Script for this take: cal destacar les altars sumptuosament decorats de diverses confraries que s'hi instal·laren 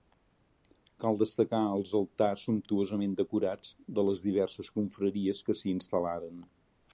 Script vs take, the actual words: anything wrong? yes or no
yes